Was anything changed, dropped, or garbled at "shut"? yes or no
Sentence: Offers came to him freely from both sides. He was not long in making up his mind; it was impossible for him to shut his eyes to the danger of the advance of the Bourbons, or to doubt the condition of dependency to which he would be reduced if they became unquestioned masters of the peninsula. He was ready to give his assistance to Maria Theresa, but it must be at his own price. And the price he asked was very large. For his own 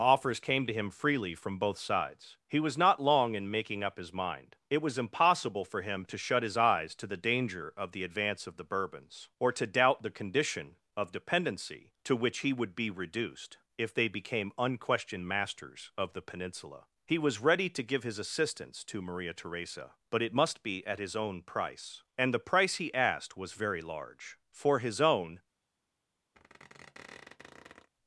no